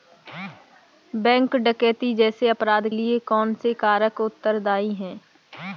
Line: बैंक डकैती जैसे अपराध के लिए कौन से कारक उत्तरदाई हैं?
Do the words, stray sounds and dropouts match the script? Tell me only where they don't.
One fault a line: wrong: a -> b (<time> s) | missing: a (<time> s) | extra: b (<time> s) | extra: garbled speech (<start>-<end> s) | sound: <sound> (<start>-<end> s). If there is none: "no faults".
missing: के (2.9 s)